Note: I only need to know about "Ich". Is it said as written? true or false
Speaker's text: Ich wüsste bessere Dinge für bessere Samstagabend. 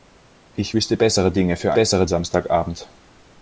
true